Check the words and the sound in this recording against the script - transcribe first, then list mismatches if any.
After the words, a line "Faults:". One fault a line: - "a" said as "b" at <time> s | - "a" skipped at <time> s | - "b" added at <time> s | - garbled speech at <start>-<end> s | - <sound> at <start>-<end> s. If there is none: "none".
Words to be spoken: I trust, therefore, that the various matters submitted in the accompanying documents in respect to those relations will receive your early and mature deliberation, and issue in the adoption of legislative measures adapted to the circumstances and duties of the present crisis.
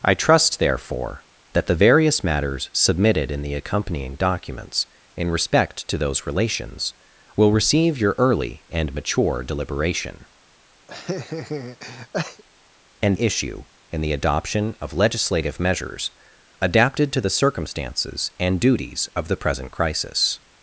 I trust, therefore, that the various matters submitted in the accompanying documents in respect to those relations will receive your early and mature deliberation, and issue in the adoption of legislative measures adapted to the circumstances and duties of the present crisis.
Faults:
- laugh at 10.9-12.4 s